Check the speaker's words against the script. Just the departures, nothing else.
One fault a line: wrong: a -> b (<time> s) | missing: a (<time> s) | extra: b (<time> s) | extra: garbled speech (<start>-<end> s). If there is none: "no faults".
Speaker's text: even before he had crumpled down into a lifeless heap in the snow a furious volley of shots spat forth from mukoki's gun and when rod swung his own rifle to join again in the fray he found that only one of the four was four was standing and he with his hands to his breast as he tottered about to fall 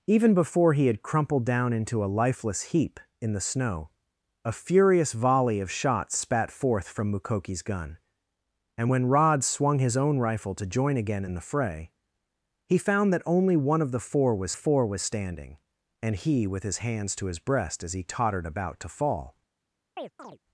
no faults